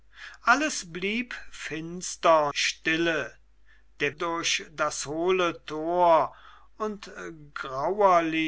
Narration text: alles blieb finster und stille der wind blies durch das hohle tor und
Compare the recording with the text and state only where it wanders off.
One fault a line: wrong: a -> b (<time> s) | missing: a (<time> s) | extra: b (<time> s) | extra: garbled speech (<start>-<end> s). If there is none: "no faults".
missing: und (2.5 s)
missing: wind blies (4.2 s)